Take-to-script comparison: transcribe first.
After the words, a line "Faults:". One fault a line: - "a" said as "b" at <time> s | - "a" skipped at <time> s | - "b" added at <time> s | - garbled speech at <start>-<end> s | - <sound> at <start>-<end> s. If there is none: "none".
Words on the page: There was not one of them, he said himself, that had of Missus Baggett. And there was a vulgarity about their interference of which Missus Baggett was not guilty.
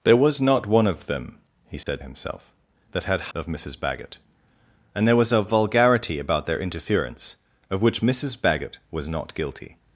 There was not one of them, he said himself, that had of Missus Baggett. And there was a vulgarity about their interference of which Missus Baggett was not guilty.
Faults:
- dropout at 1.8-1.9 s